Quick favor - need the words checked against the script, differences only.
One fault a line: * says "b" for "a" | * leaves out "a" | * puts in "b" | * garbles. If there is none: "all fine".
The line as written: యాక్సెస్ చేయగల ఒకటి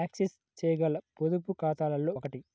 * puts in "పొదుపు ఖాతాలలో"